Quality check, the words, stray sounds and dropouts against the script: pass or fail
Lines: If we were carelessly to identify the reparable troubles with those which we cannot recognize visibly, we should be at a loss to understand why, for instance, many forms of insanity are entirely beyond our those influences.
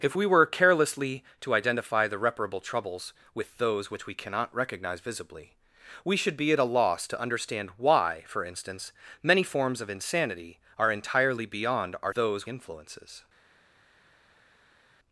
pass